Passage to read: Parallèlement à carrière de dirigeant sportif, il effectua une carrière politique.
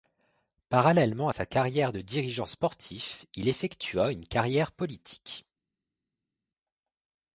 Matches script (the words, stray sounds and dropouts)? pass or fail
fail